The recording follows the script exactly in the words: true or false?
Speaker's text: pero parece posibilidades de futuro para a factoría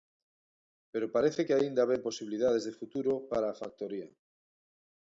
false